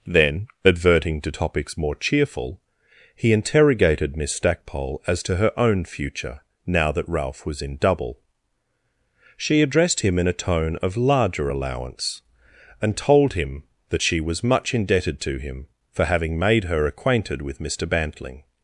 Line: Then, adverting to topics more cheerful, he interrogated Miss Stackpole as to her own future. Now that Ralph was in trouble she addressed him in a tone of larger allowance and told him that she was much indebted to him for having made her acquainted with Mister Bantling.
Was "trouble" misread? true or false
true